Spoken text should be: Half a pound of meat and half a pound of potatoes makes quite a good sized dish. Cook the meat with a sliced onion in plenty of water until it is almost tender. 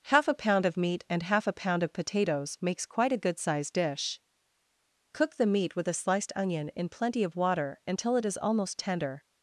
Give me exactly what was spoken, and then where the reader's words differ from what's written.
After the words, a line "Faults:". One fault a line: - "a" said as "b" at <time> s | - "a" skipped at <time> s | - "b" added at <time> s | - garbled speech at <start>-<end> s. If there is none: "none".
Half a pound of meat and half a pound of potatoes makes quite a good sized dish. Cook the meat with a sliced onion in plenty of water until it is almost tender.
Faults:
none